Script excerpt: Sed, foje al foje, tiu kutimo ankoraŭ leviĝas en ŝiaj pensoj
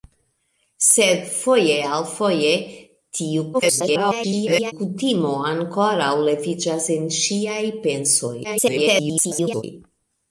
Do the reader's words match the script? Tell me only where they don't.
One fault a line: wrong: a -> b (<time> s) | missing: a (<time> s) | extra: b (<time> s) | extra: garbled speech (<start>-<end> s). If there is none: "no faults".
extra: garbled speech (3.5-4.7 s)
extra: garbled speech (8.4-9.6 s)